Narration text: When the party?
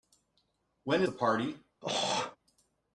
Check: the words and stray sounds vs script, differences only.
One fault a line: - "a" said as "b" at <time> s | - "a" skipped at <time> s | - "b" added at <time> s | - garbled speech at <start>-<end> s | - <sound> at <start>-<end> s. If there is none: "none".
- throat clearing at 1.8-2.4 s